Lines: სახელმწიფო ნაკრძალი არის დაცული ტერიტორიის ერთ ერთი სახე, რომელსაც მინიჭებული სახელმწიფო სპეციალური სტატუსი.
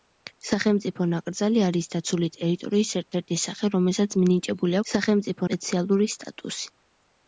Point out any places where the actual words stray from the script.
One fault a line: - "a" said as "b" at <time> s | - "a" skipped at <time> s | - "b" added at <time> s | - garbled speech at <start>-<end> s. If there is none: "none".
none